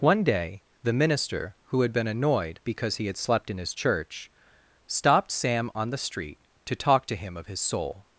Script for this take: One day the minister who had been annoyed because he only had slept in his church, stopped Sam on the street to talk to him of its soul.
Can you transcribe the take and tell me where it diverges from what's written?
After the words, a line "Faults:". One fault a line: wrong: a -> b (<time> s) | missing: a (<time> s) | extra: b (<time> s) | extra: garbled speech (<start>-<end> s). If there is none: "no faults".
One day the minister who had been annoyed because he had slept in his church, stopped Sam on the street to talk to him of his soul.
Faults:
missing: only (3.1 s)
wrong: its -> his (7.5 s)